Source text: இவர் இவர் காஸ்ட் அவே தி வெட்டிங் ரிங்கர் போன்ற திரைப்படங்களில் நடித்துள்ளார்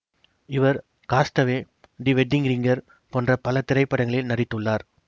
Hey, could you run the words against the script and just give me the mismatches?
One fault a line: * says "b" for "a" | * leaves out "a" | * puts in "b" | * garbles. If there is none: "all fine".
* leaves out "இவர்"
* puts in "பல"